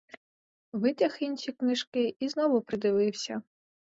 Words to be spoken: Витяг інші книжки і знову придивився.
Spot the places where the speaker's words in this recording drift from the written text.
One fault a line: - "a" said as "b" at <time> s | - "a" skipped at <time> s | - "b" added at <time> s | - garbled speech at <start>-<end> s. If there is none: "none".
none